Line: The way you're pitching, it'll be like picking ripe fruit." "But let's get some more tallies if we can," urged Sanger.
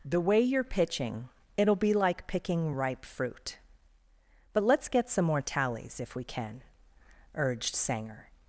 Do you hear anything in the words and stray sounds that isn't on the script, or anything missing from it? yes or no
no